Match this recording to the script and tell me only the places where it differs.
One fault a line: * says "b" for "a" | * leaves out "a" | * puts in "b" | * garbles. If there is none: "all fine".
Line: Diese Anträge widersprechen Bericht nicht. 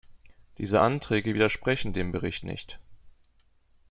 * puts in "dem"